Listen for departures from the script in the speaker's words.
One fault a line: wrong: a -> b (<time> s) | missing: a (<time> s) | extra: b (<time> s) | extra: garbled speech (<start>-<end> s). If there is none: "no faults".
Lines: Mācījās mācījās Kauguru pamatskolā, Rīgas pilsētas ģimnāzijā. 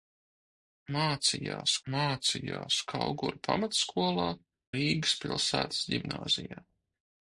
no faults